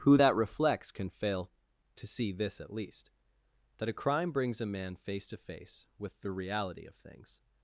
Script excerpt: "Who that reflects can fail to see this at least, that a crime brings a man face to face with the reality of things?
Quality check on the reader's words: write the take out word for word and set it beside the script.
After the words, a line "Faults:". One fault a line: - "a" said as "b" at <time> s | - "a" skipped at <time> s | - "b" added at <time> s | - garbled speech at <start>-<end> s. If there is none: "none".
"Who that reflects can fail to see this at least, that a crime brings a man face to face with the reality of things?
Faults:
none